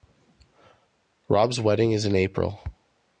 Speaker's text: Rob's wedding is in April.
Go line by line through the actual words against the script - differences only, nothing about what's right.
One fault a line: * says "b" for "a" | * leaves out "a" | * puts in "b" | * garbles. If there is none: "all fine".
all fine